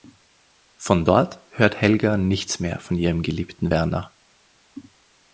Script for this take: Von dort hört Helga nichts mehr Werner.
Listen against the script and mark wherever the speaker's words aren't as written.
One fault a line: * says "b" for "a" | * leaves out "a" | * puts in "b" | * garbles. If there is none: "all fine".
* puts in "von ihrem geliebten"